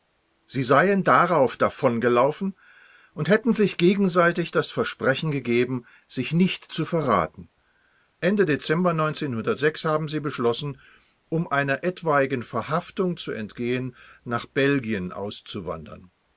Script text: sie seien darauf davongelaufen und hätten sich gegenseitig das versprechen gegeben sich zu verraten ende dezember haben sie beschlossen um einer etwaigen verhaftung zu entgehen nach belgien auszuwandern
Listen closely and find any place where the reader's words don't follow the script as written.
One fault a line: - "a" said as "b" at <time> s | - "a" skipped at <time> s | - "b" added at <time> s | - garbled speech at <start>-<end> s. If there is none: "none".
- "nicht" added at 6.3 s